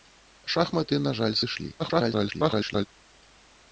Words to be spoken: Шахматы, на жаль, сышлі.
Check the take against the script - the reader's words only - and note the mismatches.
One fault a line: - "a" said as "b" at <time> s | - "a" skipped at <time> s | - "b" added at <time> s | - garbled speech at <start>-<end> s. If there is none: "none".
- garbled speech at 1.8-2.9 s